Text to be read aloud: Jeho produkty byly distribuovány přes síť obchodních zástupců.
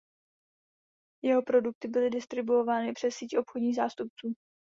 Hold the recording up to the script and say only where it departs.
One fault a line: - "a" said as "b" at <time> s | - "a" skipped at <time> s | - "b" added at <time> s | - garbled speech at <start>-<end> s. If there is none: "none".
none